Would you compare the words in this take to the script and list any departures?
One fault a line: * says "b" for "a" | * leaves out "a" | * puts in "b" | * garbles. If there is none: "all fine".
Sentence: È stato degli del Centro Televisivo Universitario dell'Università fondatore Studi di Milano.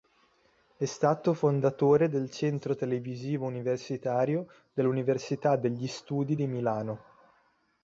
* says "fondatore" for "degli"
* says "degli" for "fondatore"